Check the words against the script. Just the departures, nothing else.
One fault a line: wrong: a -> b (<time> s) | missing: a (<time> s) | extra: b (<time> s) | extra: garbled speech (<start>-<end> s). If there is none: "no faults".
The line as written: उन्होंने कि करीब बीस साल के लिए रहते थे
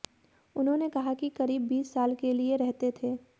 extra: कहा (0.9 s)